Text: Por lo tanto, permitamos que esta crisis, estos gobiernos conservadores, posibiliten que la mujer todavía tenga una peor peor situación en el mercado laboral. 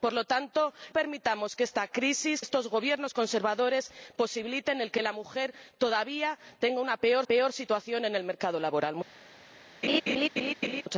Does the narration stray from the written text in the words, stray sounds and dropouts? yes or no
yes